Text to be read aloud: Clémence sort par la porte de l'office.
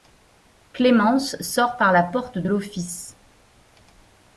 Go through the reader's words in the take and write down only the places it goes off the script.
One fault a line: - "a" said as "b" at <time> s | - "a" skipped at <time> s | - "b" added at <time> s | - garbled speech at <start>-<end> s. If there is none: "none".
none